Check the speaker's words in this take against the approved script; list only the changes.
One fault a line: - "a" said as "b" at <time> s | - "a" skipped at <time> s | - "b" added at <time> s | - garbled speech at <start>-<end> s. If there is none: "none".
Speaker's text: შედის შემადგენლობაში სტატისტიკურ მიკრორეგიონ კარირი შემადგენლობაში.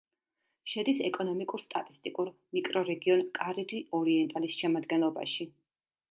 - "შემადგენლობაში" said as "ეკონომიკურ" at 1.1 s
- "ორიენტალის" added at 4.0 s